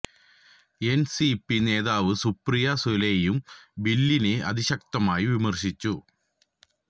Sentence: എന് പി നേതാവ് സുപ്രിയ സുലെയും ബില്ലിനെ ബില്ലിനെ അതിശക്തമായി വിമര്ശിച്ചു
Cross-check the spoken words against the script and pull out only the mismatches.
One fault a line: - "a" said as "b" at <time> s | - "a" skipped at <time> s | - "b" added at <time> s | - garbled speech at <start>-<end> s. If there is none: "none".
- "സി" added at 1.1 s
- "ബില്ലിനെ" skipped at 4.3 s